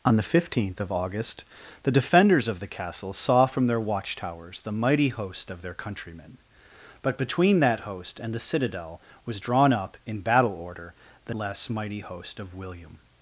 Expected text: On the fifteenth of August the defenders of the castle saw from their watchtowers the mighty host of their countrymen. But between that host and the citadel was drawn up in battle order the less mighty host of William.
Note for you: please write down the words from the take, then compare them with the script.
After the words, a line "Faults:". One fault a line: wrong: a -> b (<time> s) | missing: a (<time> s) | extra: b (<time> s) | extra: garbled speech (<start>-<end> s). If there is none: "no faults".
On the fifteenth of August the defenders of the castle saw from their watchtowers the mighty host of their countrymen. But between that host and the citadel was drawn up in battle order the less mighty host of William.
Faults:
no faults